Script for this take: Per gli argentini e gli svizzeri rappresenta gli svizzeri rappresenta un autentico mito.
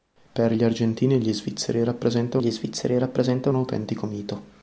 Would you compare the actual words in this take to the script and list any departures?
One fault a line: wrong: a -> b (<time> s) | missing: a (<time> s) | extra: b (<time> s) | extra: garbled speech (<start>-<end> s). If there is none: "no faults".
no faults